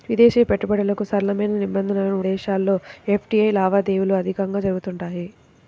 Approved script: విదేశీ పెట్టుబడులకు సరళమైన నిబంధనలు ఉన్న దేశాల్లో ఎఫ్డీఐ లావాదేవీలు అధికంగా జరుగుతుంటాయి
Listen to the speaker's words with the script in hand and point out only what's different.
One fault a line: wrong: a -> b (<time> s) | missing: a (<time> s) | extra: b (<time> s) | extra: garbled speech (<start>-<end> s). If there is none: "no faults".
missing: ఉన్న (2.1 s)